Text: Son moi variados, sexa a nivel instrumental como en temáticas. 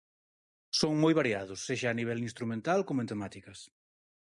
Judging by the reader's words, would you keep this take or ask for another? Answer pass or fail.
pass